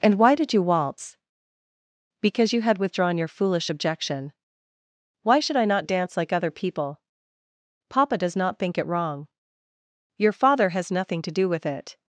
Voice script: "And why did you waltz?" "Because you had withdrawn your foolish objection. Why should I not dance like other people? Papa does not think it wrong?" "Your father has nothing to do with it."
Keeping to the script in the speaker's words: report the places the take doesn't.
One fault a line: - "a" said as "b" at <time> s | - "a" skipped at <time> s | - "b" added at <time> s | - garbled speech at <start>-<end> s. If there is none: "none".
none